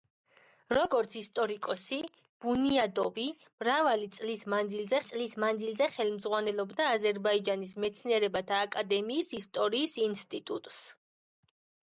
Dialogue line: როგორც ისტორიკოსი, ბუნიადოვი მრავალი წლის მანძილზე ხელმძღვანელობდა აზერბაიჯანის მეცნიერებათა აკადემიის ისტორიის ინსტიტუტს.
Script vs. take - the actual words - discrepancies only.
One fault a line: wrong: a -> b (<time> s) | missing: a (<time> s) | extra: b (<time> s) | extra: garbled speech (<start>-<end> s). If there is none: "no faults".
extra: წლის მანძილზე (5.1 s)